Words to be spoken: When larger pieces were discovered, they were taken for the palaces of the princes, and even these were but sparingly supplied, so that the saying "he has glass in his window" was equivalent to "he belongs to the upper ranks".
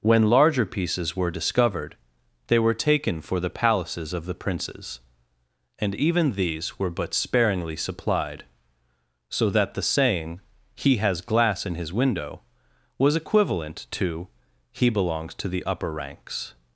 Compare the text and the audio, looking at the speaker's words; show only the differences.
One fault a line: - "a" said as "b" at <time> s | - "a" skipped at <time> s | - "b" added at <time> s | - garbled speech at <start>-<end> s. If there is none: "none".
none